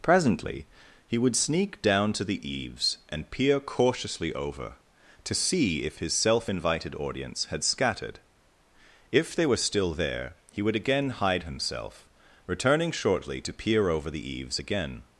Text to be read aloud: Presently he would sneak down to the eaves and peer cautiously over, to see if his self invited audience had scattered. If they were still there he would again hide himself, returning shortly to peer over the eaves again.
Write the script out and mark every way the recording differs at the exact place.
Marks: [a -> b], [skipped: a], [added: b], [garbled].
Presently he would sneak down to the eaves and peer cautiously over, to see if his self invited audience had scattered. If they were still there he would again hide himself, returning shortly to peer over the eaves again.